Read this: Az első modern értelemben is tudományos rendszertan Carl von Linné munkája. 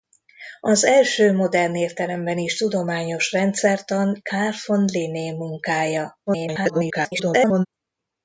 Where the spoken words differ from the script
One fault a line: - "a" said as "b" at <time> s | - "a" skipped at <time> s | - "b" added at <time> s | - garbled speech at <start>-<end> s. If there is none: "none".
- garbled speech at 6.3-7.7 s